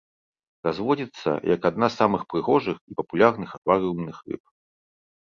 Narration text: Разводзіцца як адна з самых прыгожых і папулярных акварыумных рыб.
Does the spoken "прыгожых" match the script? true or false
true